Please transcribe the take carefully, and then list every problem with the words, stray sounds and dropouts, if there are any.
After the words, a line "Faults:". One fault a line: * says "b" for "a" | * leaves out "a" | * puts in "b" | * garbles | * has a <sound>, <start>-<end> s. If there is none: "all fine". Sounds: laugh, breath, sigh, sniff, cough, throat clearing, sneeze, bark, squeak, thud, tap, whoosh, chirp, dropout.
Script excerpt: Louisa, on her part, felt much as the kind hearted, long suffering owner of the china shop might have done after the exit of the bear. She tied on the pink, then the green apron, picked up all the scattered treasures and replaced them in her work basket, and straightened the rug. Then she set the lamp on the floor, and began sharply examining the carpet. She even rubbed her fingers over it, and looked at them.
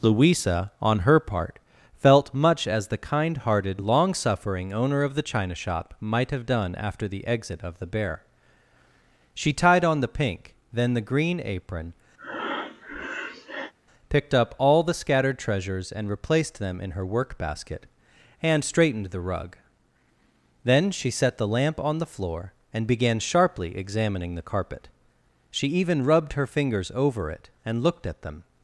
Louisa, on her part, felt much as the kind hearted, long suffering owner of the china shop might have done after the exit of the bear. She tied on the pink, then the green apron, picked up all the scattered treasures and replaced them in her work basket, and straightened the rug. Then she set the lamp on the floor, and began sharply examining the carpet. She even rubbed her fingers over it, and looked at them.
Faults:
* has a breath, 12.2-13.7 s